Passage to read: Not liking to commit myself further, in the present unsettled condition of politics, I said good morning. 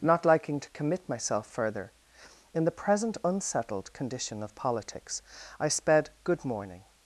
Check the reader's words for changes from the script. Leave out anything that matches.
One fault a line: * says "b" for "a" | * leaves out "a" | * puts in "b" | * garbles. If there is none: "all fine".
* says "sped" for "said"